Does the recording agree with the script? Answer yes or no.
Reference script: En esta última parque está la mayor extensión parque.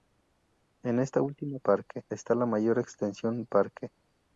yes